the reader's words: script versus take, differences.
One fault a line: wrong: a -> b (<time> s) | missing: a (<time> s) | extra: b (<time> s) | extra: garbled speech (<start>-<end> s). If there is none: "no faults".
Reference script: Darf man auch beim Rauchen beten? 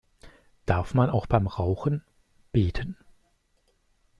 no faults